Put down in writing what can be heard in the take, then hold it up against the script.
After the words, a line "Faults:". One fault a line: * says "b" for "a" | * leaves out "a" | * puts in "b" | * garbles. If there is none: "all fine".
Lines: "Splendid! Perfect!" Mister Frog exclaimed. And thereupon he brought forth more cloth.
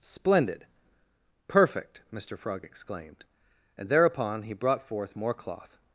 "Splendid! Perfect!" Mister Frog exclaimed. And thereupon he brought forth more cloth.
Faults:
all fine